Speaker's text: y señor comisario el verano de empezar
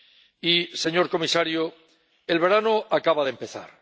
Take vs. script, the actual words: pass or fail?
fail